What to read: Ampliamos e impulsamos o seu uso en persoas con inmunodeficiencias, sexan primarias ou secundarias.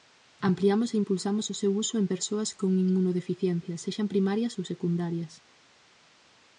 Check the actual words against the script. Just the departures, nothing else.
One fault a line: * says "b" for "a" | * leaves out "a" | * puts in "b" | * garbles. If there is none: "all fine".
all fine